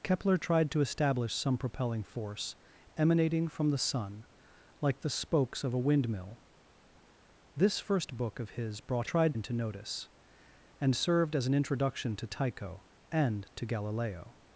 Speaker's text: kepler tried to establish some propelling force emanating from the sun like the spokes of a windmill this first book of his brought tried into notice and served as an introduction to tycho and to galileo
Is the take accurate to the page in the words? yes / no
yes